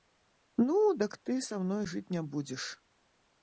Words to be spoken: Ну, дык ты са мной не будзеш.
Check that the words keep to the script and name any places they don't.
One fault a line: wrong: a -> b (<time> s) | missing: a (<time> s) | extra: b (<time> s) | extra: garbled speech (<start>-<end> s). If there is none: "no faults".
extra: жыць (1.9 s)